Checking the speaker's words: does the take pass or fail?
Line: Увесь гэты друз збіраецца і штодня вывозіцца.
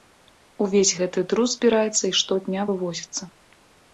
pass